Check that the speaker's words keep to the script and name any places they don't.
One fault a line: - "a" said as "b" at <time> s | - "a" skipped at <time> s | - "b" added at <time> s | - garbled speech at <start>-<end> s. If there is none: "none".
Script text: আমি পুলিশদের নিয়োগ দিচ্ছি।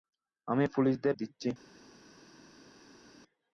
- "নিয়োগ" skipped at 1.1 s